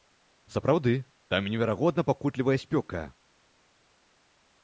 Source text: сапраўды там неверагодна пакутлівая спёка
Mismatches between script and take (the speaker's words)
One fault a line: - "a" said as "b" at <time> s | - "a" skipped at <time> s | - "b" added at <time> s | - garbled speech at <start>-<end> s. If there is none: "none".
none